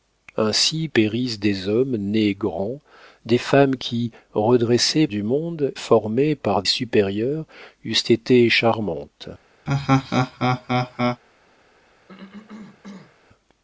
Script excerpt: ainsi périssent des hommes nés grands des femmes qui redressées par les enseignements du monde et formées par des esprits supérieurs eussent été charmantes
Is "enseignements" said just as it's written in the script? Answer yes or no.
no